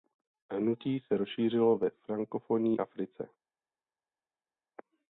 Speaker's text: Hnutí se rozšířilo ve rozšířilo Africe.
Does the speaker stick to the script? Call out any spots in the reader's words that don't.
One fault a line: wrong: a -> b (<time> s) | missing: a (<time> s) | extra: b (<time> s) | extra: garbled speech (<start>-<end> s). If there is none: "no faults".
wrong: rozšířilo -> frankofonní (1.9 s)